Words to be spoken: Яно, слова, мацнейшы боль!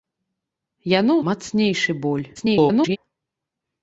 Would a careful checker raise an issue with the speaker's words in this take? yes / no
yes